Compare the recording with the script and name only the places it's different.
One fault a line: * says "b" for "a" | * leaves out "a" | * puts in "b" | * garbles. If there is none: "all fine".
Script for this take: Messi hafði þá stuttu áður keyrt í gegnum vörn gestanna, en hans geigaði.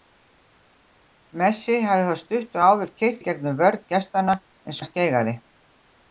all fine